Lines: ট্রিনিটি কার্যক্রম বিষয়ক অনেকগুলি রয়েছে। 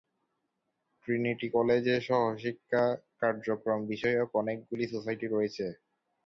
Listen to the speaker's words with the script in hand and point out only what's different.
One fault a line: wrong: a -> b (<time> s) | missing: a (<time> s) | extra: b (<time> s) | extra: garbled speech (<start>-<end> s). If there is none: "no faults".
extra: কলেজে সহশিক্ষা (1.5 s)
extra: সোসাইটি (4.9 s)